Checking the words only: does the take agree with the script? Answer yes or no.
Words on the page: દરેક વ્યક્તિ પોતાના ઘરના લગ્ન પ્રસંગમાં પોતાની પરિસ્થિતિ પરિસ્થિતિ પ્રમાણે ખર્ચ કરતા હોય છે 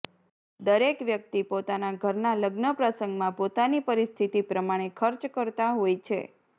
no